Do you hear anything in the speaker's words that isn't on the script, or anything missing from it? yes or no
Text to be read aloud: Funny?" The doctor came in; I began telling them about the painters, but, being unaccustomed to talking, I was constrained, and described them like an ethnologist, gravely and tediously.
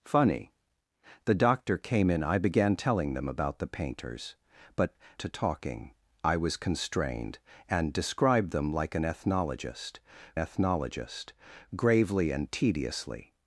yes